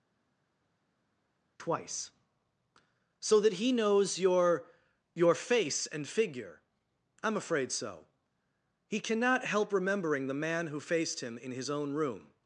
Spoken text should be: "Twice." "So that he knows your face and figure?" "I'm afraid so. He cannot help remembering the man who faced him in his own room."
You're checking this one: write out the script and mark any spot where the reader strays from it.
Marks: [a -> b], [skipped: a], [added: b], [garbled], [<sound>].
"Twice." "So that he knows your [added: your] face and figure?" "I'm afraid so. He cannot help remembering the man who faced him in his own room."